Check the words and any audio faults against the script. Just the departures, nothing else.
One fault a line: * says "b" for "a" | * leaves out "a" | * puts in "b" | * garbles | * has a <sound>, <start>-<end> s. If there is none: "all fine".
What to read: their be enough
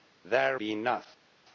all fine